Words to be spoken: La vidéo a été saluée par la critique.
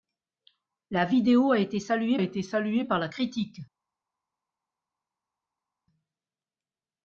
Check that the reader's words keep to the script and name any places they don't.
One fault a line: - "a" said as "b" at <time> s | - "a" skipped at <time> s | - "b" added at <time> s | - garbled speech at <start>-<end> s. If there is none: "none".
- "été saluée" added at 2.2 s